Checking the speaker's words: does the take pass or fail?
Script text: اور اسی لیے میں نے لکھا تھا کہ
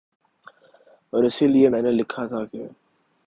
pass